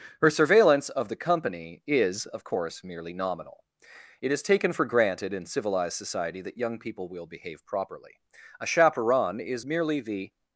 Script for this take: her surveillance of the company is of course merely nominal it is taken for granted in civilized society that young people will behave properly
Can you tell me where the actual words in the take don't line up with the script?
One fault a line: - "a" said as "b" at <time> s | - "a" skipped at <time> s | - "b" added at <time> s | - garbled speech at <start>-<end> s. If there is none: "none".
- "a chaperon is merely the" added at 8.6 s